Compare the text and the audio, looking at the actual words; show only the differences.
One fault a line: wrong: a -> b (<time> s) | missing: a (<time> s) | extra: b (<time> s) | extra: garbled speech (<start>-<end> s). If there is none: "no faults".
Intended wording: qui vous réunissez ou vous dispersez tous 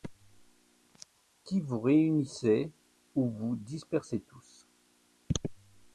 no faults